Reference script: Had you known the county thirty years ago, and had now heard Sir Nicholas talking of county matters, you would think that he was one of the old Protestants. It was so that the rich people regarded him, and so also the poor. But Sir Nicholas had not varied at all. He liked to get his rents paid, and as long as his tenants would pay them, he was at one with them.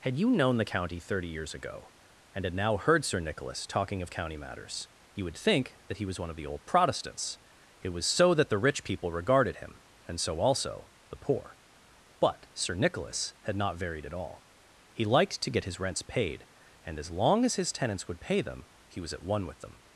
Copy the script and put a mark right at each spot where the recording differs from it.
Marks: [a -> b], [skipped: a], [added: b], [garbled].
Had you known the county thirty years ago, and had now heard Sir Nicholas talking of county matters, you would think that he was one of the old Protestants. It was so that the rich people regarded him, and so also the poor. But Sir Nicholas had not varied at all. He liked to get his rents paid, and as long as his tenants would pay them, he was at one with them.